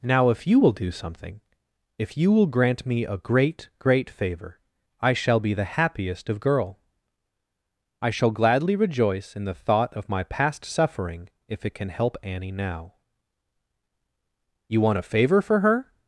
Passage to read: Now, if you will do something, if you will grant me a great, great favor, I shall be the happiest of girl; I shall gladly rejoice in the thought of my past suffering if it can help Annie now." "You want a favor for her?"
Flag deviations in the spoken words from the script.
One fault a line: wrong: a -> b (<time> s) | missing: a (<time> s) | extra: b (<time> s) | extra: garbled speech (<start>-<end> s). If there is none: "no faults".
no faults